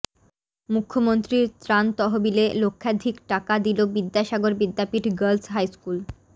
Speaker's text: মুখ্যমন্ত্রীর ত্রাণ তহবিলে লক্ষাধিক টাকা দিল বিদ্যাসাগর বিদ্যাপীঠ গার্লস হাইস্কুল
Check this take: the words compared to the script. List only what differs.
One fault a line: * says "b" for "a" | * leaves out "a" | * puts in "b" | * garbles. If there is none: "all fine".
all fine